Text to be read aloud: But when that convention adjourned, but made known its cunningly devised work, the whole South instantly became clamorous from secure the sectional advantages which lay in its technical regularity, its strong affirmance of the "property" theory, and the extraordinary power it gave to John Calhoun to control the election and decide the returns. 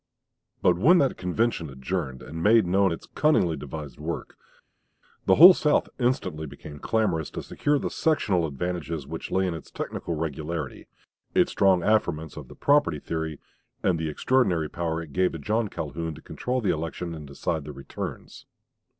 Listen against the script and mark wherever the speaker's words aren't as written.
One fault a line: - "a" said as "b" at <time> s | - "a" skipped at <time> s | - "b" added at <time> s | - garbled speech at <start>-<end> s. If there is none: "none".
- "but" said as "and" at 2.2 s
- "from" said as "to" at 7.3 s